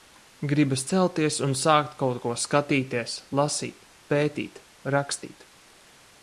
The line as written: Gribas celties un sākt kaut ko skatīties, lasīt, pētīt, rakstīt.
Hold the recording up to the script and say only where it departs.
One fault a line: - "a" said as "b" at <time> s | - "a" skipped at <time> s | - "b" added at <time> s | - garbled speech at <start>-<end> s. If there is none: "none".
none